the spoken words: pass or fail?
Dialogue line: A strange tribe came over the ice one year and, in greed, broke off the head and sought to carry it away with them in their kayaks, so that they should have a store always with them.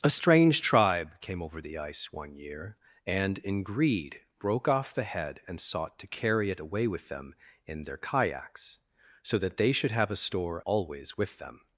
pass